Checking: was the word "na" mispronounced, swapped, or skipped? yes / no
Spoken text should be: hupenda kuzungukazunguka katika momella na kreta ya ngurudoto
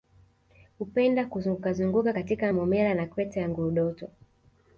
no